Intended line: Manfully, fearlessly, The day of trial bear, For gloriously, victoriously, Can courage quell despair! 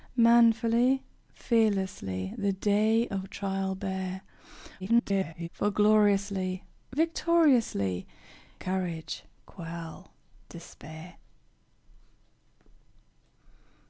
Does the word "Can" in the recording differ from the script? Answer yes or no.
yes